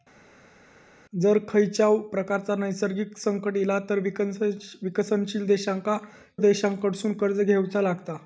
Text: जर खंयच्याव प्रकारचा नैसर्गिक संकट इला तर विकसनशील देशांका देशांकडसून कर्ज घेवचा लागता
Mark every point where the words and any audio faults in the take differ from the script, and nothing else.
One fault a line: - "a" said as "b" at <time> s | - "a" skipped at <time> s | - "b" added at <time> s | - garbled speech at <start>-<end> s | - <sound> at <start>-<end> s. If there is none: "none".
none